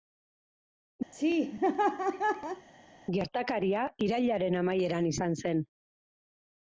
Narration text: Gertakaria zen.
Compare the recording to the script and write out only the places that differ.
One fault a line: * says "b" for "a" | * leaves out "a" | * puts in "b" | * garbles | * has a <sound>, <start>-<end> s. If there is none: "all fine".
* has a laugh, 1.1-2.7 s
* puts in "irailaren amaieran izan"